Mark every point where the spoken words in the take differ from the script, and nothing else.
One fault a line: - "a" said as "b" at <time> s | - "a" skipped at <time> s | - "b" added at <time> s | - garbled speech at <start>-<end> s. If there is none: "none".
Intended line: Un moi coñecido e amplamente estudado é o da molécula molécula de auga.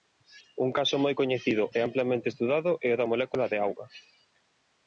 - "caso" added at 0.8 s
- "molécula" skipped at 3.4 s